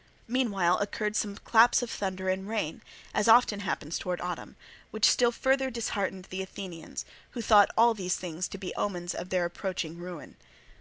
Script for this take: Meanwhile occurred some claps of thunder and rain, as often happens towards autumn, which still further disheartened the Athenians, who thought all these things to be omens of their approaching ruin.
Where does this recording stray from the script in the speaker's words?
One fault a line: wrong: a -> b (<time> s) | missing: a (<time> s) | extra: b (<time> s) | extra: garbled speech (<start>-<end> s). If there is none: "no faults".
no faults